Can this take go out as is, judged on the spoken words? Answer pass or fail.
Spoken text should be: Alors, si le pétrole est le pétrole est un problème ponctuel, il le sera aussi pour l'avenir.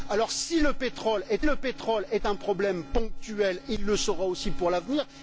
pass